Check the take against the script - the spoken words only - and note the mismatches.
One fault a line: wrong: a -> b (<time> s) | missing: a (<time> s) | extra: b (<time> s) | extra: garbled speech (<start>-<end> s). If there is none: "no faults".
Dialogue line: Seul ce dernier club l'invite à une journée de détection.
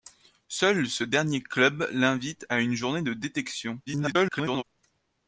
extra: garbled speech (3.9-4.6 s)